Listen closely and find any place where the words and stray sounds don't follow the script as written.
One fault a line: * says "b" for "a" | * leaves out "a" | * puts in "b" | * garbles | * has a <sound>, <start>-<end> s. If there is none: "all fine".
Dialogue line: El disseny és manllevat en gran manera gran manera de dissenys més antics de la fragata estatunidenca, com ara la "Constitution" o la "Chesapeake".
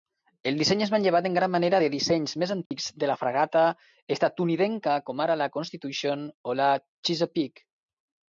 * leaves out "gran manera"
* has a dropout, 2.7-2.7 s